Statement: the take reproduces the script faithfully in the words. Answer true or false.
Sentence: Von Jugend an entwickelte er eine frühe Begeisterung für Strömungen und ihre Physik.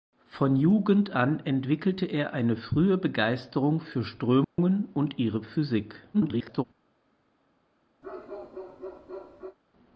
false